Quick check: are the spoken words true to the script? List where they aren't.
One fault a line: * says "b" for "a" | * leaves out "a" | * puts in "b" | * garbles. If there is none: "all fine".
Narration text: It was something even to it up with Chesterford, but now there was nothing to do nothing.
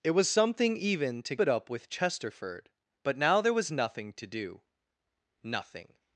all fine